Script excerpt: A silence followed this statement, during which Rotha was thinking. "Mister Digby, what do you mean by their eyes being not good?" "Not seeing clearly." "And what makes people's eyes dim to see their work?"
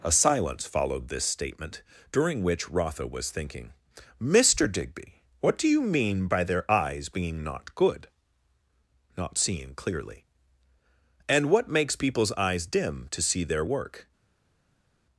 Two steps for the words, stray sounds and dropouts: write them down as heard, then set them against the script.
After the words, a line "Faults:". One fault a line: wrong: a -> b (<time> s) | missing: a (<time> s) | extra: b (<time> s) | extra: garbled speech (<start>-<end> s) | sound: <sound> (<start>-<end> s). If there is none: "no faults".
A silence followed this statement, during which Rotha was thinking. "Mister Digby, what do you mean by their eyes being not good?" "Not seeing clearly." "And what makes people's eyes dim to see their work?"
Faults:
no faults